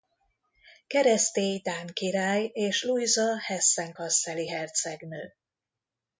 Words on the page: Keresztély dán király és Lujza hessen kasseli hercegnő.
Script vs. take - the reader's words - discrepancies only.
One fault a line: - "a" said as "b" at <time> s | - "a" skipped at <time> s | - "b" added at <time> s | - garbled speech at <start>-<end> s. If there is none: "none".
none